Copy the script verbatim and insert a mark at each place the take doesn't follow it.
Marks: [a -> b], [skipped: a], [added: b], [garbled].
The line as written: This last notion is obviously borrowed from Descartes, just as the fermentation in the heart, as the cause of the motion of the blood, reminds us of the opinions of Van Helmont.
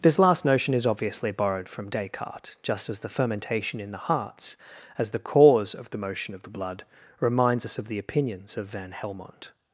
This last notion is obviously borrowed from Descartes, just as the fermentation in the [heart, -> hearts] as the cause of the motion of the blood, reminds us of the opinions of Van Helmont.